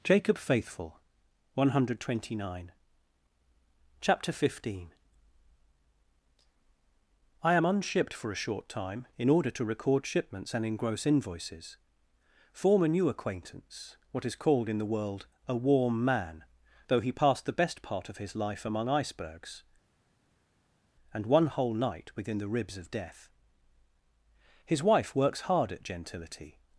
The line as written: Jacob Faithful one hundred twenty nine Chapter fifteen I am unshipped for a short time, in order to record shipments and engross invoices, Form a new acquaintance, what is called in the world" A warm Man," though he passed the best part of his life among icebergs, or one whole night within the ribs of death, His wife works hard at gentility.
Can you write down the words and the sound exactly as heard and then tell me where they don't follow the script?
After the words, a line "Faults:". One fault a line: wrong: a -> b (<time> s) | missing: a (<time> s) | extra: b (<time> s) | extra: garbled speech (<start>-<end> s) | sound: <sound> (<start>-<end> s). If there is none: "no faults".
Jacob Faithful one hundred twenty nine Chapter fifteen I am unshipped for a short time, in order to record shipments and engross invoices, Form a new acquaintance, what is called in the world" A warm Man," though he passed the best part of his life among icebergs, and one whole night within the ribs of death, His wife works hard at gentility.
Faults:
wrong: or -> and (21.1 s)